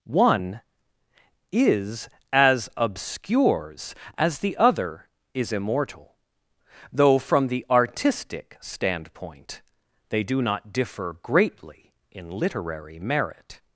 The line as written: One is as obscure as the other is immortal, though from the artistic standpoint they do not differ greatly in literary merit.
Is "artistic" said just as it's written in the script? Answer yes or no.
yes